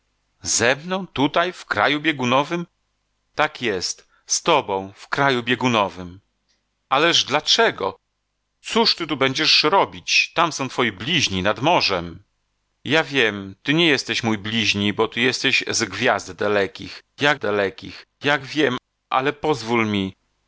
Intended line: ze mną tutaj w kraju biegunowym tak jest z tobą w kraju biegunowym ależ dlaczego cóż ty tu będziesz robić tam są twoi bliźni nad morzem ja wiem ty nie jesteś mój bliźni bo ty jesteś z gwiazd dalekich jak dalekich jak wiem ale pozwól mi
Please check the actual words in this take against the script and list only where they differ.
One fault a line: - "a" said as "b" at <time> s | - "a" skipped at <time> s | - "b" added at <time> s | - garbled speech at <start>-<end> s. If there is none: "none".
none